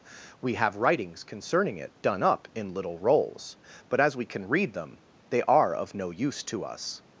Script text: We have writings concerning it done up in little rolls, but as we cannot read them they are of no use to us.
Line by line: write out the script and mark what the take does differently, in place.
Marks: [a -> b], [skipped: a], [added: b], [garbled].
We have writings concerning it done up in little rolls, but as we [cannot -> can] read them they are of no use to us.